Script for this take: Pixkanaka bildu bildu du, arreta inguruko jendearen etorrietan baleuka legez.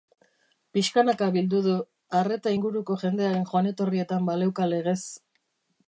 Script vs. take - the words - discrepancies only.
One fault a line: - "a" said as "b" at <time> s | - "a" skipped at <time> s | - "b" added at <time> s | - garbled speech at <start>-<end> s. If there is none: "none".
- "bildu" skipped at 1.6 s
- "joan" added at 3.5 s